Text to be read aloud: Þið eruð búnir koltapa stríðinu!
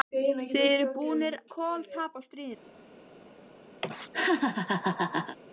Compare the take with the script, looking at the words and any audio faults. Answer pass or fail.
fail